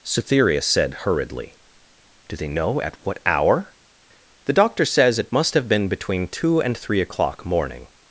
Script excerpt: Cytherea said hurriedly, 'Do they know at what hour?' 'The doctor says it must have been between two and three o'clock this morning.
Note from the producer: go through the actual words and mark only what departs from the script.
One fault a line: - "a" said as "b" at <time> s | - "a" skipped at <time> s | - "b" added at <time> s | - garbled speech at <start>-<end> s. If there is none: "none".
- "this" skipped at 7.4 s